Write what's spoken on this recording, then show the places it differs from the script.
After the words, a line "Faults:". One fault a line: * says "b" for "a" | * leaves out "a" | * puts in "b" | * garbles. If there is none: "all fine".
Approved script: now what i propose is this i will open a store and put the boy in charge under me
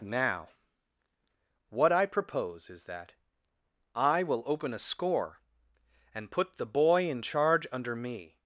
now what i propose is that i will open a score and put the boy in charge under me
Faults:
* says "that" for "this"
* says "score" for "store"